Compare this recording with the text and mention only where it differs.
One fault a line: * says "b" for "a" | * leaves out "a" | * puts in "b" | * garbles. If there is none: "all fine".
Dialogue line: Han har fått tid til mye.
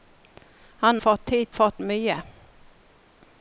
* leaves out "har"
* says "fått" for "til"